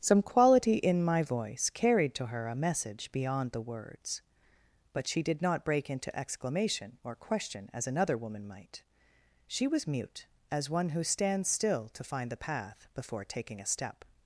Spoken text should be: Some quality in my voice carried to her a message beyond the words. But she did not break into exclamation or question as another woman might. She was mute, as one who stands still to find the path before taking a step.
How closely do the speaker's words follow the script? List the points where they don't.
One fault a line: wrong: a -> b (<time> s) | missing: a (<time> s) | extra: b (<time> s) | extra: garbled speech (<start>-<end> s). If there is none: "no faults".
no faults